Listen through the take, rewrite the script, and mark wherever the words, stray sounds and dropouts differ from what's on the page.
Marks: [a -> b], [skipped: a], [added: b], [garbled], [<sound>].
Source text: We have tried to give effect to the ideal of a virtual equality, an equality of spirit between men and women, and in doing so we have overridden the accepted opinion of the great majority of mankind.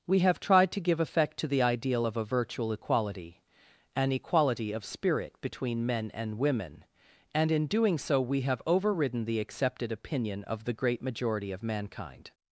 We have tried to give effect to the ideal of a virtual equality, an equality of spirit between men and women, and in doing so we have overridden the accepted opinion of the great majority of mankind.